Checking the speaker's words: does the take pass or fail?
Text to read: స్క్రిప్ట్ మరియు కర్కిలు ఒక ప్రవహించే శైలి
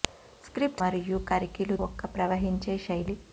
pass